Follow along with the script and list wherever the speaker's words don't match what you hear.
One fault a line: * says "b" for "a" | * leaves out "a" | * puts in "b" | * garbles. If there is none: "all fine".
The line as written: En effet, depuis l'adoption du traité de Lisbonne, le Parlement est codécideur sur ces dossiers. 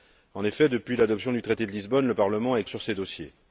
* leaves out "codécideur"